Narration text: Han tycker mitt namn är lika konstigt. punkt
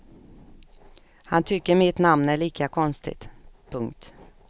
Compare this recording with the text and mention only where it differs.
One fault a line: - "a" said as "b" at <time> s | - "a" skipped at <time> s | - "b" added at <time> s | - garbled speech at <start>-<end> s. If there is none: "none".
none